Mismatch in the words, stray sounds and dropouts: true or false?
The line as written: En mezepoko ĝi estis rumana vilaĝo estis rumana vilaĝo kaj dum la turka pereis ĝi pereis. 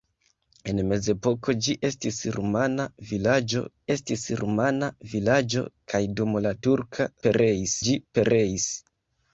false